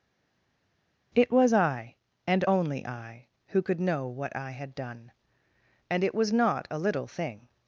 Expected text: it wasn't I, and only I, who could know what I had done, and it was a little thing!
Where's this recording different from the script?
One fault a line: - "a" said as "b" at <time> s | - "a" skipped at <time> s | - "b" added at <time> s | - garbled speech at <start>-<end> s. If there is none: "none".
- "wasn't" said as "was" at 1.3 s
- "not" added at 6.3 s